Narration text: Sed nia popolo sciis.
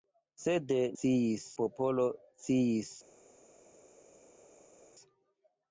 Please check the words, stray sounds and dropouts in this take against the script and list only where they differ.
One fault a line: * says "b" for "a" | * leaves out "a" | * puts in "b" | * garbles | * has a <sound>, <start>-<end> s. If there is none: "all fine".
* says "sciis" for "nia"